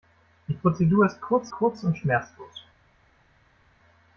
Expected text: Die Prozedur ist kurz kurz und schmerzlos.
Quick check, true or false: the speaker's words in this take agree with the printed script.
true